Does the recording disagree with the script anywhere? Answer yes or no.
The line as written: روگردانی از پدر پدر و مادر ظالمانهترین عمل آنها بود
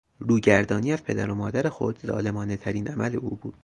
yes